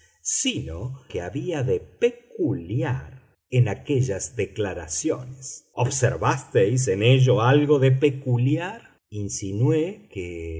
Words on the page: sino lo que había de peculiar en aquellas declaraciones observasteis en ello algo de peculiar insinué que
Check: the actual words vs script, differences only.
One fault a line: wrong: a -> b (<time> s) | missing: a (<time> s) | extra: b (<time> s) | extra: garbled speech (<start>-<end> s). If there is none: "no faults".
missing: lo (1.0 s)